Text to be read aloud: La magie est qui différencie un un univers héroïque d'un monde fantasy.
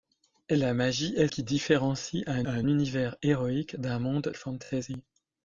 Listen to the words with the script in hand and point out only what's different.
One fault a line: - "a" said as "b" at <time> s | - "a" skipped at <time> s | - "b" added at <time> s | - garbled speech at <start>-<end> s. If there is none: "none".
none